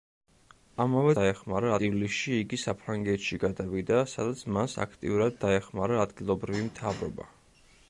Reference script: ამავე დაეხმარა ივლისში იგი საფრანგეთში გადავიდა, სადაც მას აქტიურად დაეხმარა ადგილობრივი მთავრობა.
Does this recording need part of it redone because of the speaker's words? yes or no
no